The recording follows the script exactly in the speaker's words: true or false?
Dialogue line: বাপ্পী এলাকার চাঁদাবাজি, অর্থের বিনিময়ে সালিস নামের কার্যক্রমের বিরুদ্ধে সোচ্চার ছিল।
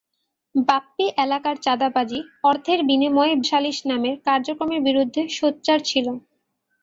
true